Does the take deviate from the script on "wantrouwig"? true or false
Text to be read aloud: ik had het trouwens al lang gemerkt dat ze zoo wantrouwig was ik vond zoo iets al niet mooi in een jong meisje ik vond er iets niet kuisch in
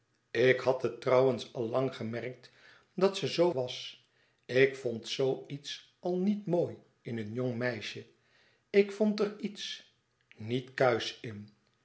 true